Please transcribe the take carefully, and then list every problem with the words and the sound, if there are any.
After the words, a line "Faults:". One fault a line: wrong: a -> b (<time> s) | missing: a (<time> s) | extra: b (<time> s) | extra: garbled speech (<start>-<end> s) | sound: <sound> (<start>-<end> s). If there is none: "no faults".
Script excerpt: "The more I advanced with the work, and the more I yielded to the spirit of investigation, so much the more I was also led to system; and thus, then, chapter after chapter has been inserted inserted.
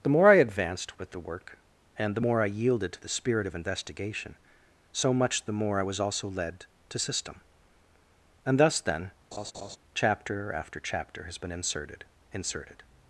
"The more I advanced with the work, and the more I yielded to the spirit of investigation, so much the more I was also led to system; and thus, then, chapter after chapter has been inserted inserted.
Faults:
sound: laugh (9.3-9.8 s)